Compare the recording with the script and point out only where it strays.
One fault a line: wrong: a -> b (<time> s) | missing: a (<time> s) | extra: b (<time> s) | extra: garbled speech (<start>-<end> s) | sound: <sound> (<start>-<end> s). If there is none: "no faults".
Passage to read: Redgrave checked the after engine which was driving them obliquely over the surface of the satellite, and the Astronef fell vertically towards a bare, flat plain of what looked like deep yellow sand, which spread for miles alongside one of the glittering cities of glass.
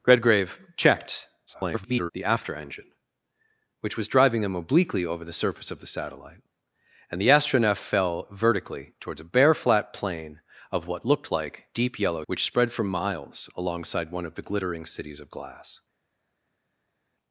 extra: garbled speech (1.5-2.1 s)
missing: sand (12.2 s)